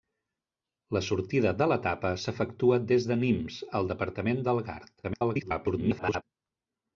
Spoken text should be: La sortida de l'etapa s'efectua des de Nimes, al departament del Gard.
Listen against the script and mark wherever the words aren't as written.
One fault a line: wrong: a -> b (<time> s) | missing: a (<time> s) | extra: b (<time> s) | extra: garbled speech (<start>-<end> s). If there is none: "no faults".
extra: garbled speech (5.0-6.2 s)